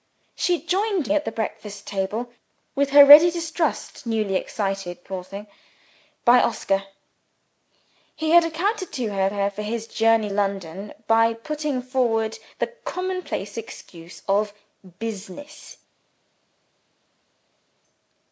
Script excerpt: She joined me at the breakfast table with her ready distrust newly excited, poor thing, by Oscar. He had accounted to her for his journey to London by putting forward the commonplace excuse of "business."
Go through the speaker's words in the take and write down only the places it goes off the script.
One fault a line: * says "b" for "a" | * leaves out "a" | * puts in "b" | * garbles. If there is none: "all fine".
* leaves out "me"
* puts in "her"
* leaves out "to"